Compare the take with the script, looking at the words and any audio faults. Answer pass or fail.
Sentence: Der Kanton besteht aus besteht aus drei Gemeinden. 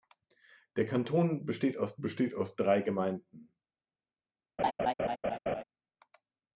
fail